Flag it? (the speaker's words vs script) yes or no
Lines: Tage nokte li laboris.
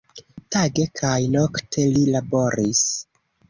yes